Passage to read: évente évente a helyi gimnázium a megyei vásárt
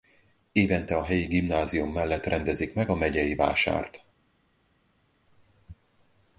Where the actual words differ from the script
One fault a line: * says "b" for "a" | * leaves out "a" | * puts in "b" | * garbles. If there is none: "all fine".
* leaves out "évente"
* puts in "mellett rendezik meg"